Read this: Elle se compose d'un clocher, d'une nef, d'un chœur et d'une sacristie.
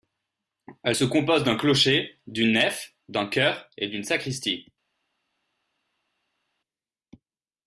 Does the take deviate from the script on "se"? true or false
false